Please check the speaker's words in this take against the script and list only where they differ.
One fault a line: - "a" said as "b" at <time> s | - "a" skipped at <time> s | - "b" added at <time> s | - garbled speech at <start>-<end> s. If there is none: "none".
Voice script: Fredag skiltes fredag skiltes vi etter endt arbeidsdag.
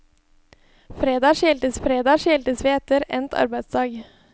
none